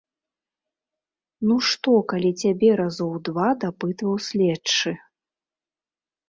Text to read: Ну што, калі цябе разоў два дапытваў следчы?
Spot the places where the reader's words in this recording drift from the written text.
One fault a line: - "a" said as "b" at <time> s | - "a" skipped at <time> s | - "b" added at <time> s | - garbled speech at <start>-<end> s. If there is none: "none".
none